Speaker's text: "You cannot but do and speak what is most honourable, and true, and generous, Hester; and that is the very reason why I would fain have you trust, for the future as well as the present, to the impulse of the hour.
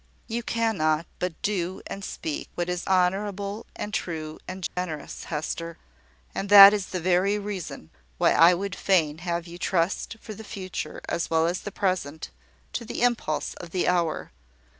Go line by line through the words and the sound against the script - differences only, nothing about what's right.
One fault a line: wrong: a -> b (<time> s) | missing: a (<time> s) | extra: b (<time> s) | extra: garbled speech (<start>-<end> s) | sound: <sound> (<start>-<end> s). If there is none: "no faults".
missing: most (2.9 s)
sound: dropout (4.7-4.8 s)